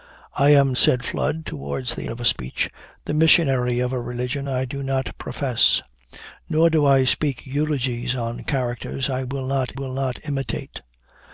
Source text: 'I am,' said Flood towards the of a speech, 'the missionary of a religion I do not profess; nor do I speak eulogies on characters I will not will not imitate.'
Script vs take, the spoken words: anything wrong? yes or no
no